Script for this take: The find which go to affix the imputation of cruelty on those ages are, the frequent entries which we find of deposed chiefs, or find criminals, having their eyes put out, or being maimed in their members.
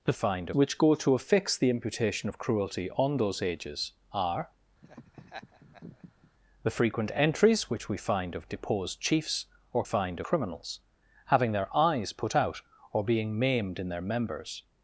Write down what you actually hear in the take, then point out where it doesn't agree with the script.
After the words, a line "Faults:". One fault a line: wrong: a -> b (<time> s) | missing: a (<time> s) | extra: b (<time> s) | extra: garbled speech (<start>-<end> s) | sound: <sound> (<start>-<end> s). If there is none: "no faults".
The find which go to affix the imputation of cruelty on those ages are, the frequent entries which we find of deposed chiefs, or find criminals, having their eyes put out, or being maimed in their members.
Faults:
sound: laugh (4.8-6.3 s)